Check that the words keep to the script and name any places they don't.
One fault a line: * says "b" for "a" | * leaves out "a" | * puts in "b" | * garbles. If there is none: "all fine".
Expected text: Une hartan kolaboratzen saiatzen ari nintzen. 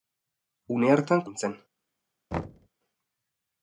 * leaves out "kolaboratzen saiatzen ari"